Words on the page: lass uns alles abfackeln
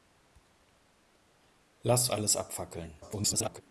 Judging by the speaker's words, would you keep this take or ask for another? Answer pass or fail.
fail